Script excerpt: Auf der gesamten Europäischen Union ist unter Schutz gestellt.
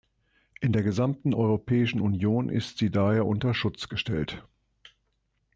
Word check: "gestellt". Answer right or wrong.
right